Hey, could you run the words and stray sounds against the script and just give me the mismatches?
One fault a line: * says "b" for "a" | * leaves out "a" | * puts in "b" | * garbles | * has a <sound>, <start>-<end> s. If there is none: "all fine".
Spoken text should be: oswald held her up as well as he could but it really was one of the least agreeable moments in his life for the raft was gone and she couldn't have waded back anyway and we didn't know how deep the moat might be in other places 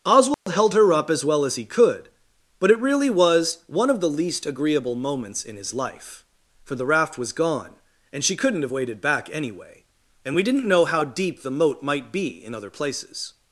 * has a dropout, 0.3-0.5 s